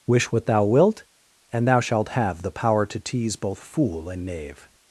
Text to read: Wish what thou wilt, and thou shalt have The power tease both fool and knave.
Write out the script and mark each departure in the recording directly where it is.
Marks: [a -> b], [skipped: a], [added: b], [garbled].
Wish what thou wilt, and thou shalt have The power [added: to] tease both fool and knave.